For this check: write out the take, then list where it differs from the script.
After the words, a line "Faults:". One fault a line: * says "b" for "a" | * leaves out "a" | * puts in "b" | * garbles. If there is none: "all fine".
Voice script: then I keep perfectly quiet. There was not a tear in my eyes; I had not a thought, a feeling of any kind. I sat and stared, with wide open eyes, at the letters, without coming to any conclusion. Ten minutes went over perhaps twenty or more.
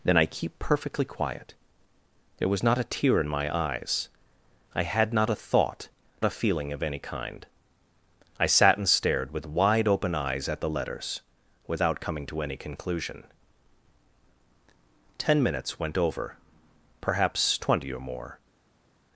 then I keep perfectly quiet. There was not a tear in my eyes; I had not a thought, a feeling of any kind. I sat and stared, with wide open eyes, at the letters, without coming to any conclusion. Ten minutes went over perhaps twenty or more.
Faults:
all fine